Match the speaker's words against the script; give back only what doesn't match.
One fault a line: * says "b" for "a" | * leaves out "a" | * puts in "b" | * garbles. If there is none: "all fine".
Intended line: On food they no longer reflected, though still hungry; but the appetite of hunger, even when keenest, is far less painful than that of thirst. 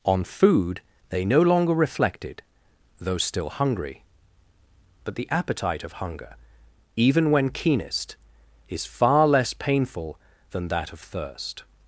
all fine